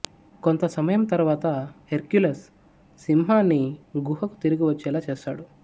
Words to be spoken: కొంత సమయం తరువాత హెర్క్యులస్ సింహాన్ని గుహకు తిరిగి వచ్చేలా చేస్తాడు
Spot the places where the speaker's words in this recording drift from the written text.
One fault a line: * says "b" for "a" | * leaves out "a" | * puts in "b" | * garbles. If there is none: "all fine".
all fine